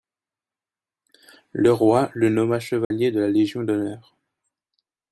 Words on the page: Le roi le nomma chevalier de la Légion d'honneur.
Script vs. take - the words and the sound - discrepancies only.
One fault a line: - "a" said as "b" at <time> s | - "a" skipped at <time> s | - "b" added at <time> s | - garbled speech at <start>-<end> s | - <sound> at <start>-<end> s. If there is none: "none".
- dropout at 2.8-2.9 s